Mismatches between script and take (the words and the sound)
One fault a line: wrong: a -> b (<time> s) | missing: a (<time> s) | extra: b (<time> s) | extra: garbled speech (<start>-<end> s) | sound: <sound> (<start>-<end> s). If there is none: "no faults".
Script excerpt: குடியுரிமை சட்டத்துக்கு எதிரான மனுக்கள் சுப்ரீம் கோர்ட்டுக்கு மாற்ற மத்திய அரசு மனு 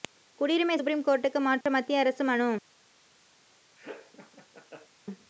missing: சட்டத்துக்கு எதிரான மனுக்கள் (0.8 s)
sound: dropout (1.6-1.7 s)
sound: laugh (3.8-4.9 s)